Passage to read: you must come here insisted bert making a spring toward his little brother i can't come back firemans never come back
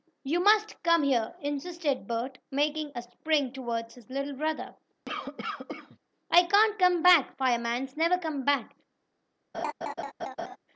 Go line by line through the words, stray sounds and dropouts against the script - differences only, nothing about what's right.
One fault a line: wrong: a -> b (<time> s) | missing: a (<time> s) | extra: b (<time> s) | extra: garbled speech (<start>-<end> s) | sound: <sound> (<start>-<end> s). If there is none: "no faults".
sound: cough (5.1-6.0 s)
sound: laugh (9.5-10.6 s)